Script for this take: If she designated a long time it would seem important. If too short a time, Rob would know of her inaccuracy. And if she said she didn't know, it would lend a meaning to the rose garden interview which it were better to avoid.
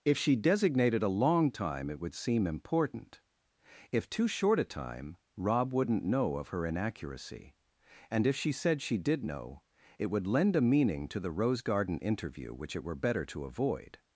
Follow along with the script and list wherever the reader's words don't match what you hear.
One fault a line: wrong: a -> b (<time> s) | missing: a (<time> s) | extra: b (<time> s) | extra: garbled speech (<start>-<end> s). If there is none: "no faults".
wrong: would -> wouldn't (5.7 s)
wrong: didn't -> did (9.0 s)